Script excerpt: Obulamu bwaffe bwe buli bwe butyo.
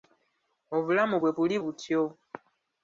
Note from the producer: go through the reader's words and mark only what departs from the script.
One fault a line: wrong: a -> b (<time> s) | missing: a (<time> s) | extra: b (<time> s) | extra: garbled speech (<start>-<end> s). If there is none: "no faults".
missing: bwaffe (1.1 s)
missing: bwe (1.6 s)